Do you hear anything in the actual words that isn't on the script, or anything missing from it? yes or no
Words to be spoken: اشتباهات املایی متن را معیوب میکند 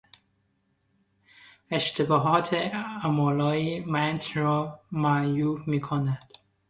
no